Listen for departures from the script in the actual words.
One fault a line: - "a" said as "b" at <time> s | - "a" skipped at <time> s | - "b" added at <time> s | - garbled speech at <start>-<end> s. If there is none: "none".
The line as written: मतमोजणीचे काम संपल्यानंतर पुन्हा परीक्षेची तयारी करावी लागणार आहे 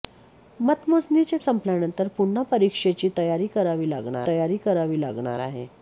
- "काम" skipped at 1.4 s
- "तयारी करावी लागणार" added at 4.3 s